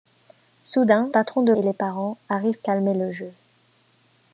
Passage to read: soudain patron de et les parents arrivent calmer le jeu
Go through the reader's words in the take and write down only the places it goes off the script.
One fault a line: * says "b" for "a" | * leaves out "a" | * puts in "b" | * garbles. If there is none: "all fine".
all fine